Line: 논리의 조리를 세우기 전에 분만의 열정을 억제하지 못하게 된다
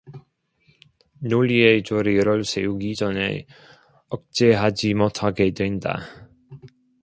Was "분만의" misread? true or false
true